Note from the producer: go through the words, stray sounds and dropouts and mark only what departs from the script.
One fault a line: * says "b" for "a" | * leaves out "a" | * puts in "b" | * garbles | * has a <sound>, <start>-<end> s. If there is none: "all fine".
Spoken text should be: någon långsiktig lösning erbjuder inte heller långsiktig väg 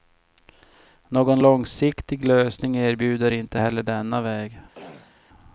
* says "denna" for "långsiktig"
* has a throat clearing, 4.7-5.2 s